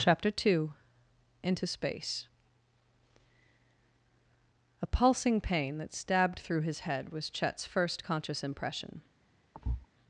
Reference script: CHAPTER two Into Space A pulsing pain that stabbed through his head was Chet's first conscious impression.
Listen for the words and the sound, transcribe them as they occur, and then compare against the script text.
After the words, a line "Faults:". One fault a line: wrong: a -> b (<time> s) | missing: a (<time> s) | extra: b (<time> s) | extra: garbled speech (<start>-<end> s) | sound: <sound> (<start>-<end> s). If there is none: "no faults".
CHAPTER two Into Space A pulsing pain that stabbed through his head was Chet's first conscious impression.
Faults:
sound: thud (9.5-9.9 s)